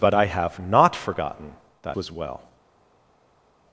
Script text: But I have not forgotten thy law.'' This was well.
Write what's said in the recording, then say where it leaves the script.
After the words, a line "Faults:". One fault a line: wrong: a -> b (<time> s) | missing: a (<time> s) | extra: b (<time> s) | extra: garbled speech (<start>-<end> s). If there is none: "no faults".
But I have not forgotten thy was well.
Faults:
missing: law This (1.9 s)